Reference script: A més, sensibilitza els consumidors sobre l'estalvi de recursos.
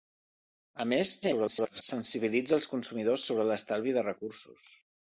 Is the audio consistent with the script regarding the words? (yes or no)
no